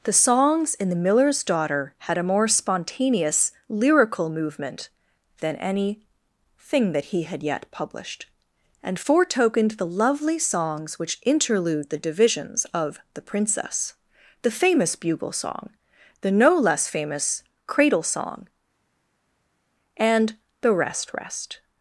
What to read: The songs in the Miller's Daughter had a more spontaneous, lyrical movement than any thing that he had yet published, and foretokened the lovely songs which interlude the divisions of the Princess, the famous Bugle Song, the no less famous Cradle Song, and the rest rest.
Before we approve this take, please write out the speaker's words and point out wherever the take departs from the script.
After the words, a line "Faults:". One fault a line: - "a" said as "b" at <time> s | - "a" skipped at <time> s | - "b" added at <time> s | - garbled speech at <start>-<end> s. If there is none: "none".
The songs in the Miller's Daughter had a more spontaneous, lyrical movement than any thing that he had yet published, and foretokened the lovely songs which interlude the divisions of the Princess, the famous Bugle Song, the no less famous Cradle Song, and the rest rest.
Faults:
none